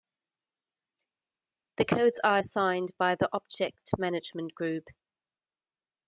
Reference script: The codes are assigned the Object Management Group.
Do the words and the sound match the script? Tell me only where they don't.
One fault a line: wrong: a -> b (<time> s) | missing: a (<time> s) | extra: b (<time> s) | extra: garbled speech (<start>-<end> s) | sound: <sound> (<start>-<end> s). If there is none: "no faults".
extra: by (3.0 s)